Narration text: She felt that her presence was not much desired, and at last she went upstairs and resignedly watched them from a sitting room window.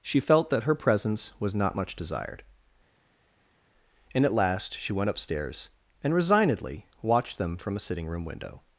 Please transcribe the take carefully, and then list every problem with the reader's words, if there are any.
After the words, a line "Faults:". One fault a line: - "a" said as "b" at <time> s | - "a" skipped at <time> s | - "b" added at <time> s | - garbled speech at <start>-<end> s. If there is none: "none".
She felt that her presence was not much desired, and at last she went upstairs and resignedly watched them from a sitting room window.
Faults:
none